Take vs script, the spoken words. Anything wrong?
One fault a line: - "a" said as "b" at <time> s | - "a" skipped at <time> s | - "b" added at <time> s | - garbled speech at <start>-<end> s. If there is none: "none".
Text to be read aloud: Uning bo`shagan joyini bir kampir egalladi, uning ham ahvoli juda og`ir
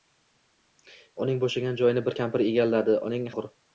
- "ham ahvoli juda" skipped at 3.3 s